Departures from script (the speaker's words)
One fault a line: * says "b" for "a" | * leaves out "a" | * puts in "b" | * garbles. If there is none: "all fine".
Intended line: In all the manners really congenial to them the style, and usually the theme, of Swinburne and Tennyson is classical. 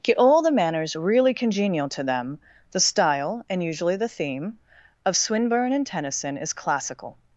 * says "Get" for "In"